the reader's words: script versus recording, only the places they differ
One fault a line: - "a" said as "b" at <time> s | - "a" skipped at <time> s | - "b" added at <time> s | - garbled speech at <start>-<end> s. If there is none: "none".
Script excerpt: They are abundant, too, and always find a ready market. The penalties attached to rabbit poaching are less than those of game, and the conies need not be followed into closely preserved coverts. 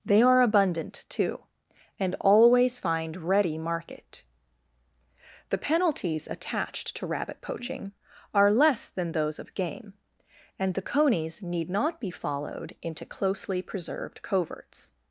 - "a" skipped at 3.2 s